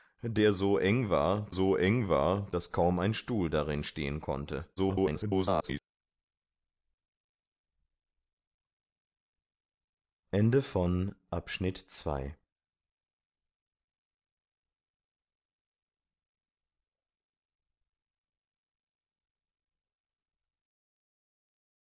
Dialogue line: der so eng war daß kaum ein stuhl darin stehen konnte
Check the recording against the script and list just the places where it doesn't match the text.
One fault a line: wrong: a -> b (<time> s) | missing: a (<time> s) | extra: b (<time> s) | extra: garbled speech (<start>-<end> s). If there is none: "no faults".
extra: so eng war (1.5 s)
extra: garbled speech (4.8-5.8 s)